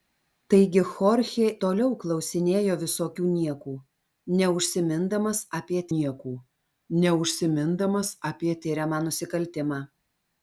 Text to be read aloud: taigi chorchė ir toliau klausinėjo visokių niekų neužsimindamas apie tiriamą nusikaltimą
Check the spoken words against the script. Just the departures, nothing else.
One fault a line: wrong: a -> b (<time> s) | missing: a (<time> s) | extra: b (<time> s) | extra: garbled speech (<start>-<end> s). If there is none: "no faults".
missing: ir (1.5 s)
extra: niekų neužsimindamas apie (5.9 s)